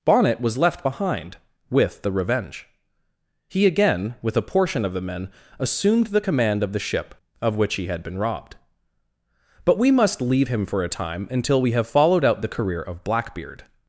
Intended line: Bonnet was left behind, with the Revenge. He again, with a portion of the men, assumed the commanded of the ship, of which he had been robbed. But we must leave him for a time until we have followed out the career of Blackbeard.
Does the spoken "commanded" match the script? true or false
false